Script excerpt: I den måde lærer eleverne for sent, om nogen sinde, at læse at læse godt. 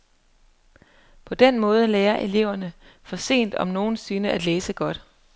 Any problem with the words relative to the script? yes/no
yes